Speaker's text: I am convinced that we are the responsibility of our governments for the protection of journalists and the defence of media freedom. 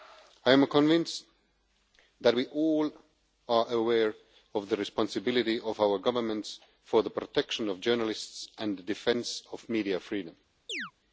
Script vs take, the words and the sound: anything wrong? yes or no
yes